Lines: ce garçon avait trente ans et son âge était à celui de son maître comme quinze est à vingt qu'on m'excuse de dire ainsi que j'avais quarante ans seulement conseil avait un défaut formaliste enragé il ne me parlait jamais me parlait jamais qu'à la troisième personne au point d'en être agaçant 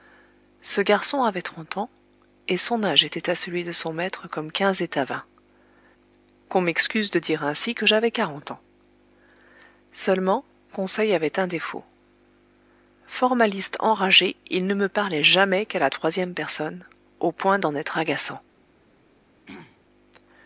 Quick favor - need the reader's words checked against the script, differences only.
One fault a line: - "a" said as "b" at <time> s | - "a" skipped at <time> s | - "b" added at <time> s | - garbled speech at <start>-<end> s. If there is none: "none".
- "me parlait jamais" skipped at 15.7 s